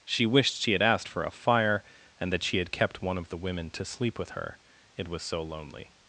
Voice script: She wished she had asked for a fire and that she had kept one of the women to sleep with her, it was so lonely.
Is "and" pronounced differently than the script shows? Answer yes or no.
no